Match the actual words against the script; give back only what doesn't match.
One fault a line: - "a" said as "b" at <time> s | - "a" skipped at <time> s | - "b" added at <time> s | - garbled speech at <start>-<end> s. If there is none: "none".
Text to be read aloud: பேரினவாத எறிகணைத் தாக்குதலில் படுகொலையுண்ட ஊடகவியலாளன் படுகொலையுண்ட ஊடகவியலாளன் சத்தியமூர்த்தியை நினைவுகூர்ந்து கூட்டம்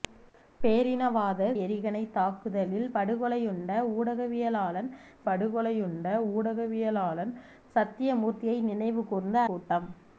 none